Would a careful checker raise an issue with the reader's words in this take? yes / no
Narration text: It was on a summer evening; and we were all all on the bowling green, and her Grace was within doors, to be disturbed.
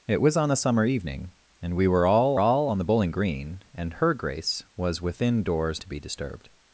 no